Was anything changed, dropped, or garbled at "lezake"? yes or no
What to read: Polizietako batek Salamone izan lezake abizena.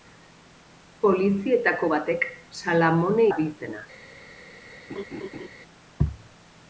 yes